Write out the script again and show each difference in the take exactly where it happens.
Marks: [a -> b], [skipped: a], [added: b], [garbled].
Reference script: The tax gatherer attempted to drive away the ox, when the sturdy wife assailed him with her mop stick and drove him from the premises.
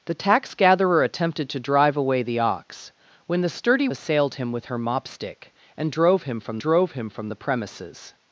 The tax gatherer attempted to drive away the ox, when the sturdy [skipped: wife] assailed him with her mop stick and drove him from [added: drove him from] the premises.